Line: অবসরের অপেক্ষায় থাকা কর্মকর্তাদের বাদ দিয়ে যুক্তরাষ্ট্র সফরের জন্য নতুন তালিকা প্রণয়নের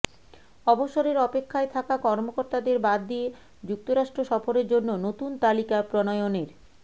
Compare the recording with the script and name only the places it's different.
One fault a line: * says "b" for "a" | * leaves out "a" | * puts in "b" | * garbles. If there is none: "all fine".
all fine